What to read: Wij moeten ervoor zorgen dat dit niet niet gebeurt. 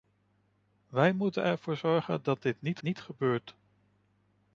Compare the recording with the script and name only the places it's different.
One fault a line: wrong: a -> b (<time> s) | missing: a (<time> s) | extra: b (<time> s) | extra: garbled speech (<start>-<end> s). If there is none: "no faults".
no faults